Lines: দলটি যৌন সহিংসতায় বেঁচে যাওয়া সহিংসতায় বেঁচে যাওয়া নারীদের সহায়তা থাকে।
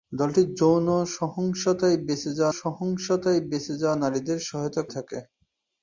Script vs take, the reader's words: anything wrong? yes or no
no